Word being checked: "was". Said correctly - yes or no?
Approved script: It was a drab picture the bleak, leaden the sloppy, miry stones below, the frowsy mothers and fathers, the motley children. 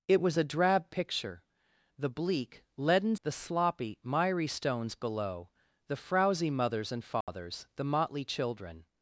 yes